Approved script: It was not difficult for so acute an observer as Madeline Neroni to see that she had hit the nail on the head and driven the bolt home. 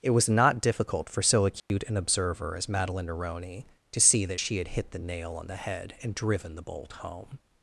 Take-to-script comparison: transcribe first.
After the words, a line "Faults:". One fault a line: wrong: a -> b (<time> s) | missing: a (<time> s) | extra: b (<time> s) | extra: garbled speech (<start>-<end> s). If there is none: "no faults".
It was not difficult for so acute an observer as Madeline Neroni to see that she had hit the nail on the head and driven the bolt home.
Faults:
no faults